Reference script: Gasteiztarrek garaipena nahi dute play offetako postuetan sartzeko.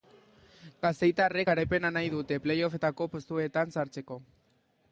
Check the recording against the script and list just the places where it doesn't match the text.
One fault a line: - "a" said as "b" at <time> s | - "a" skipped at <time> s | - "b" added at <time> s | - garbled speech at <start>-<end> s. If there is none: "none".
none